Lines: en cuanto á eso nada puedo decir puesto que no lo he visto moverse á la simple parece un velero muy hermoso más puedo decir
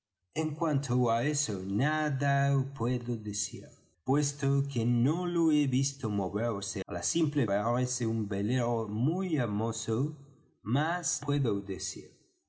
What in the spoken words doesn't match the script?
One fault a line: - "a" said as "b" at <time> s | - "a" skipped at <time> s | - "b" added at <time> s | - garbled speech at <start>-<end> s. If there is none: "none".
none